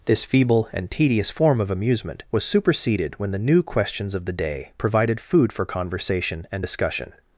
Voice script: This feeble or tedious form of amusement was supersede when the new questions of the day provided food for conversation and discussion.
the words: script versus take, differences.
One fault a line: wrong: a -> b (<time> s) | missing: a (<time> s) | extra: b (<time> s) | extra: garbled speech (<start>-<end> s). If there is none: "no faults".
wrong: or -> and (0.7 s)
wrong: supersede -> superseded (2.4 s)